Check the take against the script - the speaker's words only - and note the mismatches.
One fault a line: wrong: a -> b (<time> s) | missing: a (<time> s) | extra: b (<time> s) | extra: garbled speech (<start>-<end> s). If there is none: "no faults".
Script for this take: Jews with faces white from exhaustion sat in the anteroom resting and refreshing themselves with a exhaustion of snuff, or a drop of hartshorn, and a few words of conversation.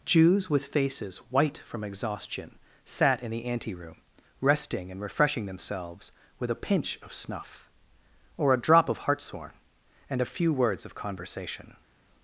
wrong: exhaustion -> pinch (6.6 s)